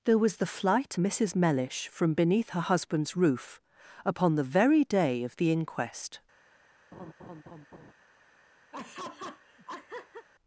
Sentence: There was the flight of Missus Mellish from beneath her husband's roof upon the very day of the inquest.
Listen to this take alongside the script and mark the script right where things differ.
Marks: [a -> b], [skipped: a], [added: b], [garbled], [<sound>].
There was the flight [skipped: of] Missus Mellish from beneath her husband's roof upon the very day of the inquest. [laugh] [laugh]